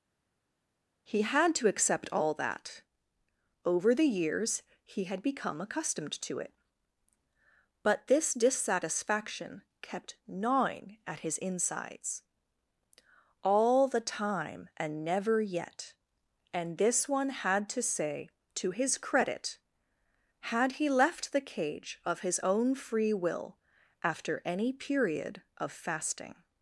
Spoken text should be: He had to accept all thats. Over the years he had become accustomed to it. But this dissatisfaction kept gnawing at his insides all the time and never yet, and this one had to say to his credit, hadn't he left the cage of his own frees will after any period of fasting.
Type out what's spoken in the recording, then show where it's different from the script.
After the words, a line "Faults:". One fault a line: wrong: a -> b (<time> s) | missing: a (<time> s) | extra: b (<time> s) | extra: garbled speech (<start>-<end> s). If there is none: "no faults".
He had to accept all that. Over the years he had become accustomed to it. But this dissatisfaction kept gnawing at his insides all the time and never yet, and this one had to say to his credit, had he left the cage of his own free will after any period of fasting.
Faults:
wrong: thats -> that (2.3 s)
wrong: hadn't -> had (20.4 s)
wrong: frees -> free (22.7 s)